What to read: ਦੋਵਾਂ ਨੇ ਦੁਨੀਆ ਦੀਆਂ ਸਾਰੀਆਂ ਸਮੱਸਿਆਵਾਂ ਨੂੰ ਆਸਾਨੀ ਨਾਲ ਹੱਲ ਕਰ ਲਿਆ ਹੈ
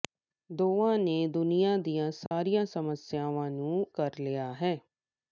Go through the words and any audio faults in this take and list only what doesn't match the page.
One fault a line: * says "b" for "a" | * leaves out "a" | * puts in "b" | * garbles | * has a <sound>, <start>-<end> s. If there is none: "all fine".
* has a dropout, 2.3-2.3 s
* leaves out "ਆਸਾਨੀ ਨਾਲ ਹੱਲ"